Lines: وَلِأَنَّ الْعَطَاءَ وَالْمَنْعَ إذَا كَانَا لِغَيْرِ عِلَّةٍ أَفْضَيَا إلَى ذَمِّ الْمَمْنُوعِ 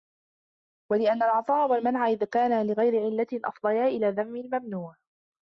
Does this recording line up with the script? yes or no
yes